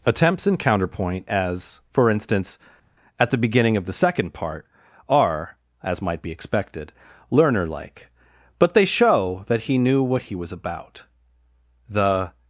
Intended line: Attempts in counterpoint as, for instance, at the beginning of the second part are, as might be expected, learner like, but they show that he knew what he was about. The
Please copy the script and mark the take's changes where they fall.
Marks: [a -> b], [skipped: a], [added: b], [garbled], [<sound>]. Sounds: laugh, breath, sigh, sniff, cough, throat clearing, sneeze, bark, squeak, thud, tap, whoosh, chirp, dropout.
Attempts in counterpoint as, for instance, at the beginning of the second part are, as might be expected, learner like, but they show that he knew what he was about. The